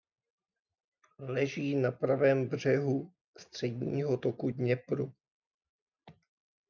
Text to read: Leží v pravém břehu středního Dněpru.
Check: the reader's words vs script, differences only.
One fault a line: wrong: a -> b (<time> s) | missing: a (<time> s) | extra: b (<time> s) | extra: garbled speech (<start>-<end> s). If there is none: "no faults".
wrong: v -> na (1.8 s)
extra: toku (4.2 s)